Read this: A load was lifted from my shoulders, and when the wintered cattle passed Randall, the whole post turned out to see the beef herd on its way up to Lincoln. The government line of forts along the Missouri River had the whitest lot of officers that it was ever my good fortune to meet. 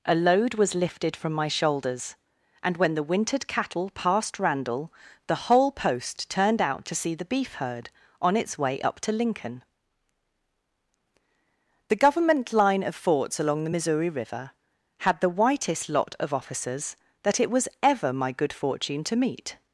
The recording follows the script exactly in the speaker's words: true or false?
true